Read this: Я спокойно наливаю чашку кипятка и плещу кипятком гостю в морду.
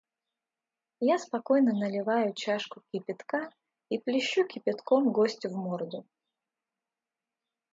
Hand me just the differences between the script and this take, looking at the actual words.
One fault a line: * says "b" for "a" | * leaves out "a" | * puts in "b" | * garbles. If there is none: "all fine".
all fine